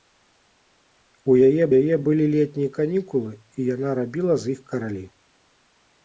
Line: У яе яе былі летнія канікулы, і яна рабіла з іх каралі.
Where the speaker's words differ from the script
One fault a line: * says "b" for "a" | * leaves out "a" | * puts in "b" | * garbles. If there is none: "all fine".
all fine